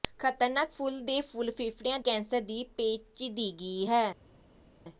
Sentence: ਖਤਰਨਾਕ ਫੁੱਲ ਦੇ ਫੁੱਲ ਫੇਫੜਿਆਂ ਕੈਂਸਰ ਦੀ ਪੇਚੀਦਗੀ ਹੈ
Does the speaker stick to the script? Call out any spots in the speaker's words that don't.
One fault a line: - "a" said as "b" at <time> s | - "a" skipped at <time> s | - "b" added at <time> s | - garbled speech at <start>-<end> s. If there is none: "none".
none